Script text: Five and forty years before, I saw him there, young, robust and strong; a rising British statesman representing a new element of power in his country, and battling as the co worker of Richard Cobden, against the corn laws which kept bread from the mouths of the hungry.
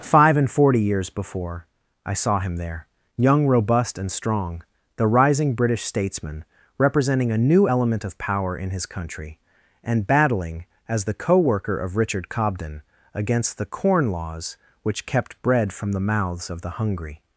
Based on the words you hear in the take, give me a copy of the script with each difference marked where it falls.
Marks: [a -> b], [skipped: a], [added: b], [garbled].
Five and forty years before, I saw him there, young, robust and strong; [a -> the] rising British statesman representing a new element of power in his country, and battling as the co worker of Richard Cobden, against the corn laws which kept bread from the mouths of the hungry.